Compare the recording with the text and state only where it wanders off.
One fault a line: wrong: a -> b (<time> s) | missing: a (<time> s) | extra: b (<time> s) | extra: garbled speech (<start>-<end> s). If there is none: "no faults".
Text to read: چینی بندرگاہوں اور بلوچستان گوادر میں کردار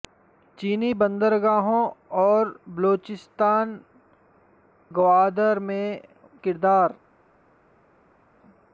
no faults